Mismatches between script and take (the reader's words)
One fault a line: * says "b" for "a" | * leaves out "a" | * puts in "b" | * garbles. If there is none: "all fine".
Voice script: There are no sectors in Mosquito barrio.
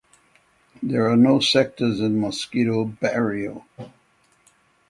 all fine